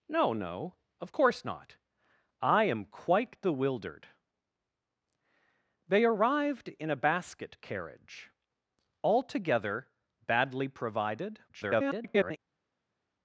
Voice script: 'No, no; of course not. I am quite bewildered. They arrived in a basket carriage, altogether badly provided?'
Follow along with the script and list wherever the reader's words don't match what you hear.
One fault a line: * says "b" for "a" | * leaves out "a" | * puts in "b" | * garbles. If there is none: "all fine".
* garbles